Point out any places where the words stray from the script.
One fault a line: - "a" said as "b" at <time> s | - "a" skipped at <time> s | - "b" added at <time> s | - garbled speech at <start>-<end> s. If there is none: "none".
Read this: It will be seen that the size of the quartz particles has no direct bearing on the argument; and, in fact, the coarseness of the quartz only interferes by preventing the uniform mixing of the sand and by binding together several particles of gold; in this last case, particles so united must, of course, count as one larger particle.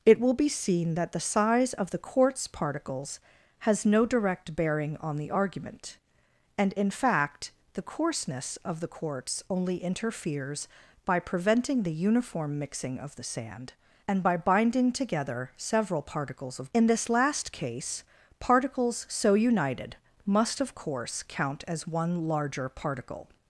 - "gold" skipped at 16.7 s